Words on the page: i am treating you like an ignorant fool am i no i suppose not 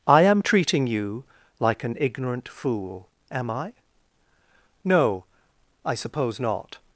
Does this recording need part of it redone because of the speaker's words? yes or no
no